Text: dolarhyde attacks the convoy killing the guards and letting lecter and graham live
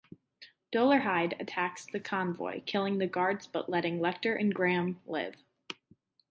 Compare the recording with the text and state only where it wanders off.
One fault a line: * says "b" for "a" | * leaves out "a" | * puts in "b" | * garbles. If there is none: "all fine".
* says "but" for "and"